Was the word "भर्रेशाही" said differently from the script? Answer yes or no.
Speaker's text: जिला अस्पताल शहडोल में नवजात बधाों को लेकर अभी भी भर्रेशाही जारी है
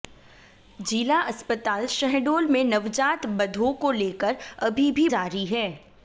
yes